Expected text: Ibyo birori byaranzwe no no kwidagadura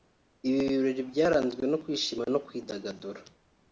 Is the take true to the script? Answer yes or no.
no